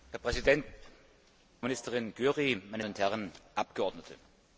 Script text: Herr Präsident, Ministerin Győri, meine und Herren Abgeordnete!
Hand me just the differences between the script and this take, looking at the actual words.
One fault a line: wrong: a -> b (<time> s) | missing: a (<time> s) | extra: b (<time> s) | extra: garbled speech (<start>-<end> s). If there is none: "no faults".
no faults